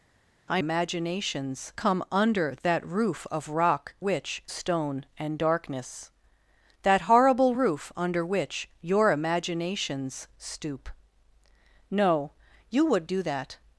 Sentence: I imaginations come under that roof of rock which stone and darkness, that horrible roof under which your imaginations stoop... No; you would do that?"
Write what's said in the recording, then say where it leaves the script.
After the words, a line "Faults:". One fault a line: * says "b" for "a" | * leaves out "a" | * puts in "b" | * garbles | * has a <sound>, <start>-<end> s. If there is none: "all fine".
I imaginations come under that roof of rock which stone and darkness, that horrible roof under which your imaginations stoop... No; you would do that?"
Faults:
all fine